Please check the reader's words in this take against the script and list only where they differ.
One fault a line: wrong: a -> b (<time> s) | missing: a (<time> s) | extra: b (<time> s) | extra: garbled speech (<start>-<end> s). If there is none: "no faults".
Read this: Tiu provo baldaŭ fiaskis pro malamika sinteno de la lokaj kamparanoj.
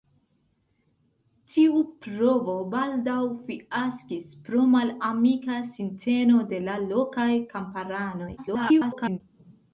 extra: garbled speech (8.4-9.2 s)